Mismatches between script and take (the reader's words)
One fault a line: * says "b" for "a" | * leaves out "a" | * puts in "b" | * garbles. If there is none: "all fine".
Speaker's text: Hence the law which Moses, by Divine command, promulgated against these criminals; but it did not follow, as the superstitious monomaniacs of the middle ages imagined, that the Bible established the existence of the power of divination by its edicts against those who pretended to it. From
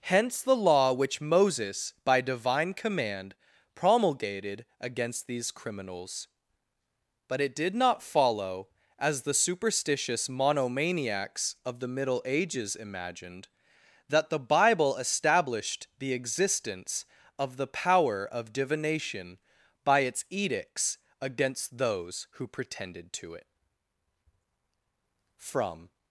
all fine